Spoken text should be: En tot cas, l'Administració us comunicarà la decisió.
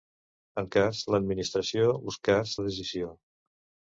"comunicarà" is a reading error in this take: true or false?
true